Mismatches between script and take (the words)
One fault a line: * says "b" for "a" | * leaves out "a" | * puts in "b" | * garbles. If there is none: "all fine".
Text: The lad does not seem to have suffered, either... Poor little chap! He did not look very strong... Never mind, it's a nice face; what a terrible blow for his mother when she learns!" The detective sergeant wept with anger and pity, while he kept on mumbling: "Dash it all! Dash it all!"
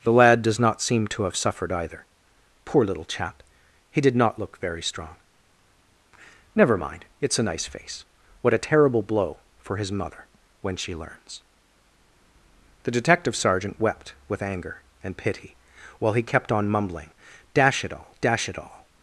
all fine